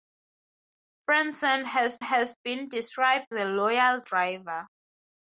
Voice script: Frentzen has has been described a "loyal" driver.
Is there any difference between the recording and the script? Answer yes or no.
no